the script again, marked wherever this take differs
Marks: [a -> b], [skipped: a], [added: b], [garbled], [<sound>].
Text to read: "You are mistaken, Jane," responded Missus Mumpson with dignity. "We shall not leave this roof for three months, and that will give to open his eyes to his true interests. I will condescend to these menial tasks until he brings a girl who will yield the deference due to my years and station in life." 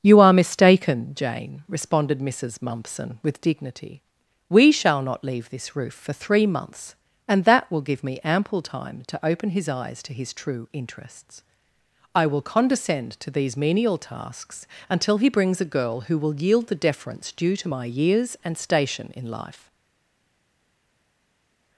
"You are mistaken, Jane," responded Missus Mumpson with dignity. "We shall not leave this roof for three months, and that will give [added: me ample time] to open his eyes to his true interests. I will condescend to these menial tasks until he brings a girl who will yield the deference due to my years and station in life."